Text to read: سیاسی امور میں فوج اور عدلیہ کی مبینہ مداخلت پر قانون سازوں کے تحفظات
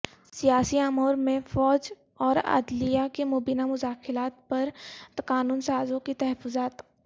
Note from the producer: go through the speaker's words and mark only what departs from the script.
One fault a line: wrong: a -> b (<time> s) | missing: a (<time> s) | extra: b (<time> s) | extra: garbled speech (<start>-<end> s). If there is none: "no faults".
no faults